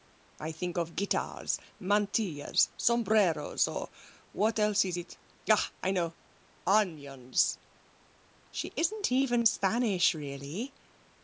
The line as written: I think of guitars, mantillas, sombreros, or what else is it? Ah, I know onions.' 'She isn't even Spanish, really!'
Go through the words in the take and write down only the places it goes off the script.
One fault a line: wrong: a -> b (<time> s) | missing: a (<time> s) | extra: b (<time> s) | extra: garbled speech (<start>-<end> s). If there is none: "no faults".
no faults